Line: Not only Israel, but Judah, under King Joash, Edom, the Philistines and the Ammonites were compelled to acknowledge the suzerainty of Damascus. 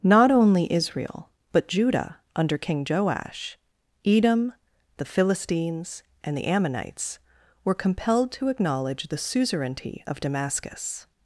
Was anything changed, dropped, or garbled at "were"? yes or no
no